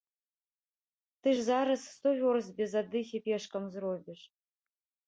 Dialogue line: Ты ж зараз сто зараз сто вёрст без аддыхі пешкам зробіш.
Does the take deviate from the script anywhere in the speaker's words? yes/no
yes